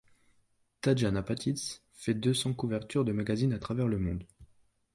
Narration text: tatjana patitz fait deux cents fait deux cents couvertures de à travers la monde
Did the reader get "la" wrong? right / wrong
wrong